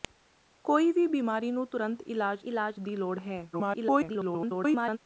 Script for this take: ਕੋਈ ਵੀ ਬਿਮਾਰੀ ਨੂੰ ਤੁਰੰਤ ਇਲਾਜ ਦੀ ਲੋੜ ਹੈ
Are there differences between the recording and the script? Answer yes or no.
yes